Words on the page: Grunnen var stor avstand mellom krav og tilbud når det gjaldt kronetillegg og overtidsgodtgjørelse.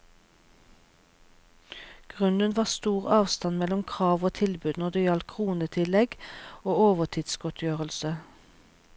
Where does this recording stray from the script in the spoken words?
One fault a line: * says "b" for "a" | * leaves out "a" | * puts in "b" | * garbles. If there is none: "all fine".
all fine